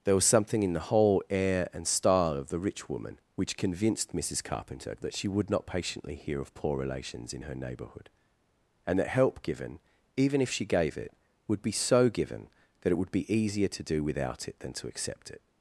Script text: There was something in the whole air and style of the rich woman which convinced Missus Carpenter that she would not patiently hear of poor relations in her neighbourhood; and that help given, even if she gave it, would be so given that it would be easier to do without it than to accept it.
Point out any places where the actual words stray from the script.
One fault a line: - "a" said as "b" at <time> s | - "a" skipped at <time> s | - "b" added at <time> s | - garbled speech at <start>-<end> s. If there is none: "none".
none